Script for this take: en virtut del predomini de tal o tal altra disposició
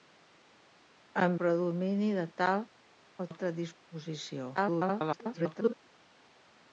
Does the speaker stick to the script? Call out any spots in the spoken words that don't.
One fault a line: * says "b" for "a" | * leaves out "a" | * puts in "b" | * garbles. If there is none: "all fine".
* leaves out "virtut del"
* leaves out "tal"
* garbles